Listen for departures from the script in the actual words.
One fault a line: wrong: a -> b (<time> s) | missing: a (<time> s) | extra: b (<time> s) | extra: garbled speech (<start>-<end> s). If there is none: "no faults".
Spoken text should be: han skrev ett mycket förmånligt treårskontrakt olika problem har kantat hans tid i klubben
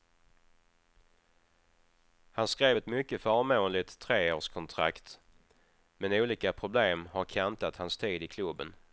extra: men (6.0 s)